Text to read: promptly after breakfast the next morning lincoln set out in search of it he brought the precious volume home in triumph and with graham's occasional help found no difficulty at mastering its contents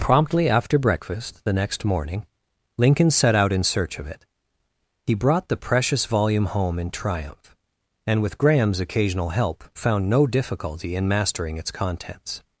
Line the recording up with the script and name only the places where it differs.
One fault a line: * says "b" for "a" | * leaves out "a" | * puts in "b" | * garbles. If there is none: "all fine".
* says "in" for "at"